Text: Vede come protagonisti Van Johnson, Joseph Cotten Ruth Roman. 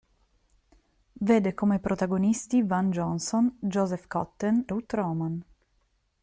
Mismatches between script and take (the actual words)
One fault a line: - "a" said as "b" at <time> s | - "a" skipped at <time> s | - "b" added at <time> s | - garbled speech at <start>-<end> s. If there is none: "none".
none